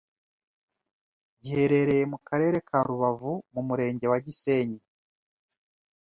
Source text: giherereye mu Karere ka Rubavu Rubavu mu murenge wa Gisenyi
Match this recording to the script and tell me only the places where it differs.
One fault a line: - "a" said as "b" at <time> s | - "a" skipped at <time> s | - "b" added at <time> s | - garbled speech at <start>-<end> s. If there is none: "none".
- "Rubavu" skipped at 3.3 s